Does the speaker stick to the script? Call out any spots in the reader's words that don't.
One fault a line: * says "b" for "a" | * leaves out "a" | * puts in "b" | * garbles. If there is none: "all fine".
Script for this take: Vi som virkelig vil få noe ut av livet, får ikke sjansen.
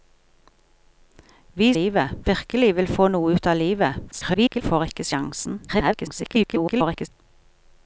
* says "livet" for "som"
* garbles
* garbles